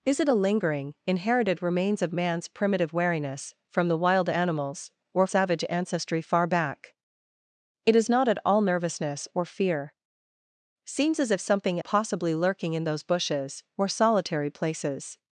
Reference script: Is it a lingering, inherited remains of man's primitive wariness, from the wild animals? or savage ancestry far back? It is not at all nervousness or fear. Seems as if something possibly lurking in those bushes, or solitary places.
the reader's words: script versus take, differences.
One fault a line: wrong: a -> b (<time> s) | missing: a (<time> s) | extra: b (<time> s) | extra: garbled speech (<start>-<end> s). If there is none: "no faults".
no faults